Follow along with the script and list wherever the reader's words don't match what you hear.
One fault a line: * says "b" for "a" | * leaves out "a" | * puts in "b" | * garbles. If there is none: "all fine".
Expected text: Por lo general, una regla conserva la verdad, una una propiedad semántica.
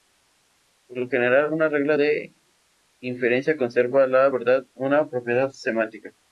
* puts in "de inferencia"
* leaves out "una"